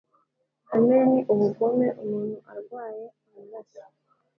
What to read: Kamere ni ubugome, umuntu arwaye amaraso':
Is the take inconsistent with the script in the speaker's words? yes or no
no